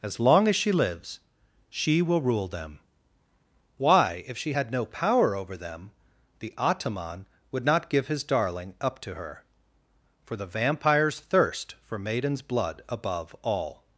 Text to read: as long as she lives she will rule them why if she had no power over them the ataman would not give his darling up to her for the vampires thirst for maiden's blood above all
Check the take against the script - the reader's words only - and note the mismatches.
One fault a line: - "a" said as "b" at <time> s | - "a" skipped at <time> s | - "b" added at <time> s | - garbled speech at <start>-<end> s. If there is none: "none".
none